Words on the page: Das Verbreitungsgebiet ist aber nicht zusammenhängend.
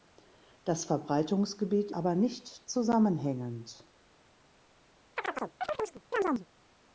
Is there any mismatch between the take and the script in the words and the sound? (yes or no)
yes